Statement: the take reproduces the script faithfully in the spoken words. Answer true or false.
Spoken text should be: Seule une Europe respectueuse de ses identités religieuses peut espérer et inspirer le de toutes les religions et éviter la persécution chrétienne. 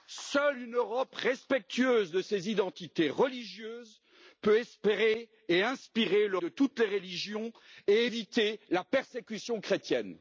true